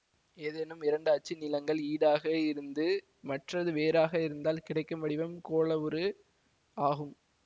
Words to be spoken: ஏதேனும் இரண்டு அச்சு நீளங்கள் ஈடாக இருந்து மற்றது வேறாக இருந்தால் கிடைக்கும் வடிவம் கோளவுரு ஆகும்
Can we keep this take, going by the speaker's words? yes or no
yes